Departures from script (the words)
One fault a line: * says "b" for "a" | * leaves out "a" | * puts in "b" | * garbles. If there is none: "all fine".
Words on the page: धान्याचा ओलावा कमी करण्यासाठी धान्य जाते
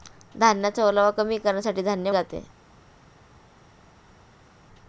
all fine